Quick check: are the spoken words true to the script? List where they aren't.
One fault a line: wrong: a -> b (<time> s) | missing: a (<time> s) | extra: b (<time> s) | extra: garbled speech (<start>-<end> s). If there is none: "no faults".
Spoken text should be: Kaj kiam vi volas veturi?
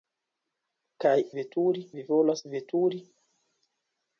wrong: kiam -> veturi (1.4 s)